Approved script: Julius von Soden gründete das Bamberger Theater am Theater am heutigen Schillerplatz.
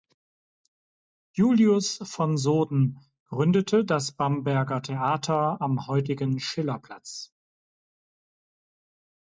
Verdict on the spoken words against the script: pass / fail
fail